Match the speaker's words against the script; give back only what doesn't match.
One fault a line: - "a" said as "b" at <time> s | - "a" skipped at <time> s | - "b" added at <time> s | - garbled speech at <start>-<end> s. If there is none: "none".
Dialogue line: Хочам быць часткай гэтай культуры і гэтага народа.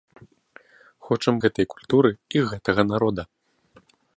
- "быць часткай" skipped at 1.4 s